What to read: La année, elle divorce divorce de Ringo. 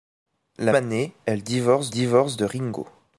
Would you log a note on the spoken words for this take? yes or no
no